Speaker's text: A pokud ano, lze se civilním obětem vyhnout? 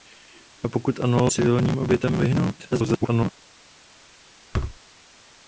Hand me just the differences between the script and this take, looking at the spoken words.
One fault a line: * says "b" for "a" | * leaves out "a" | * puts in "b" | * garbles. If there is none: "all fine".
* leaves out "lze se"
* garbles